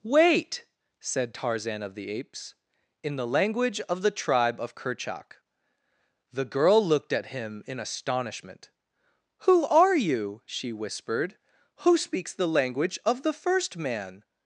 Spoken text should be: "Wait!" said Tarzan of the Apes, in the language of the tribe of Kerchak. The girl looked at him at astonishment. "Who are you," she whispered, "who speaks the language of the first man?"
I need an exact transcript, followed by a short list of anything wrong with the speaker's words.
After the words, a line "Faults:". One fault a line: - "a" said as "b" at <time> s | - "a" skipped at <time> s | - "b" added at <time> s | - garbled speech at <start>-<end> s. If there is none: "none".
"Wait!" said Tarzan of the Apes, in the language of the tribe of Kerchak. The girl looked at him in astonishment. "Who are you," she whispered, "who speaks the language of the first man?"
Faults:
- "at" said as "in" at 7.7 s